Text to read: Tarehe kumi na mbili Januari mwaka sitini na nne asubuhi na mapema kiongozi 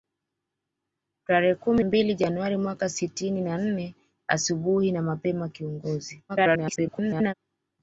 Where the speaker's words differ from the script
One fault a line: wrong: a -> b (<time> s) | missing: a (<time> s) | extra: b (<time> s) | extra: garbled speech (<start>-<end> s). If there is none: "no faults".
missing: na (1.8 s)
extra: garbled speech (6.3-7.3 s)